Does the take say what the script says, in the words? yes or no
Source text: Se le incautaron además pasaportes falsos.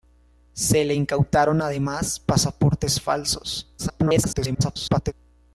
no